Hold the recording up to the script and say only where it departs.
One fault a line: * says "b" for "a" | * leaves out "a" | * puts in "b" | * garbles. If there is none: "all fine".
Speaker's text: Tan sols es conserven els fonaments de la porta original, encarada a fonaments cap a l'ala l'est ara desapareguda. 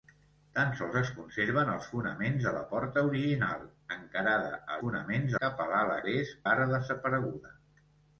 all fine